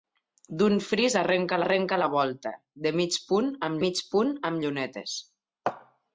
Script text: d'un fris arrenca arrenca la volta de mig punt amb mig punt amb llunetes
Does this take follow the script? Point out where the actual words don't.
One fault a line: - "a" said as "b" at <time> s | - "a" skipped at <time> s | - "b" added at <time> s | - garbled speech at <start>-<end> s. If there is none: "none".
none